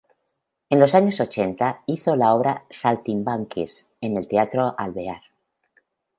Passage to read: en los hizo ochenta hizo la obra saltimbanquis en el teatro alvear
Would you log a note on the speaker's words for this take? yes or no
yes